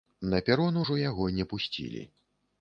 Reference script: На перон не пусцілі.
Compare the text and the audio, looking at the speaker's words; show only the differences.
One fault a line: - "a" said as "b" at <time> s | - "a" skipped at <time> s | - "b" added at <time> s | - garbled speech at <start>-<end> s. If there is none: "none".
- "ужо яго" added at 0.8 s